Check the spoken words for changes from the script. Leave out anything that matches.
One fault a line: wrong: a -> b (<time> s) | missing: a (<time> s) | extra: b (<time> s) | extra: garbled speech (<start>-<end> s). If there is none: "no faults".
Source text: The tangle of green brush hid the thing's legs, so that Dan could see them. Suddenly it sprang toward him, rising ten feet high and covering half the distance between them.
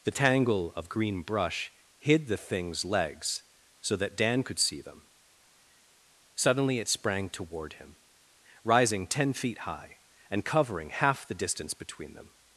no faults